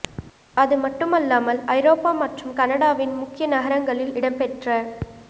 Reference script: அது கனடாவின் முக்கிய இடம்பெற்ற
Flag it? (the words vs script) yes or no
yes